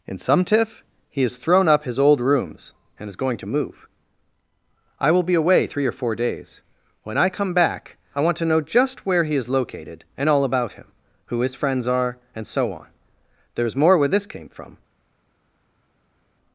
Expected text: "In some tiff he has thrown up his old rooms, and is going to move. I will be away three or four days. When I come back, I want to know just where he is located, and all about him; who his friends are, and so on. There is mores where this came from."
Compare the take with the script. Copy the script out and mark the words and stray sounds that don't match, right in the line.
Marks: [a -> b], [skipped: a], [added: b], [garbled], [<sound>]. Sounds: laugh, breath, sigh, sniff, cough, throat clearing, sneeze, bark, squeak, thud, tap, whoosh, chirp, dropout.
"In some tiff he has thrown up his old rooms, and is going to move. I will be away three or four days. When I come back, I want to know just where he is located, and all about him; who his friends are, and so on. There is [mores -> more] where this came from."